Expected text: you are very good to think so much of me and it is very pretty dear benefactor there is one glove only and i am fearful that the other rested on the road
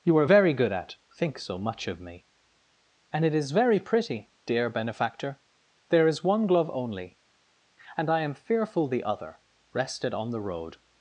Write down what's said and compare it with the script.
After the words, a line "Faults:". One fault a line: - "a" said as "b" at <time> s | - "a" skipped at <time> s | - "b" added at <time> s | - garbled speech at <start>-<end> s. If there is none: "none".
you are very good at think so much of me and it is very pretty dear benefactor there is one glove only and i am fearful the other rested on the road
Faults:
- "to" said as "at" at 0.7 s
- "that" skipped at 8.9 s